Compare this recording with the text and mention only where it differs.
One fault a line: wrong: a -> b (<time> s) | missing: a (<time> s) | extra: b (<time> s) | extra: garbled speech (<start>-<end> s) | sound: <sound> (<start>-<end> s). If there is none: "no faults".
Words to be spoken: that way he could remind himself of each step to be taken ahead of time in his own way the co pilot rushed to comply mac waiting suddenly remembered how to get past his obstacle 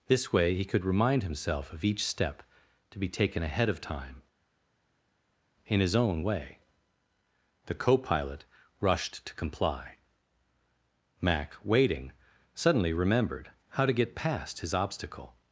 wrong: that -> this (0.1 s)